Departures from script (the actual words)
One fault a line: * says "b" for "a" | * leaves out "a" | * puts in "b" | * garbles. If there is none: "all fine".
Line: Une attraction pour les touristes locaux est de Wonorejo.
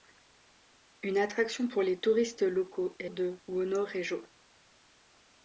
all fine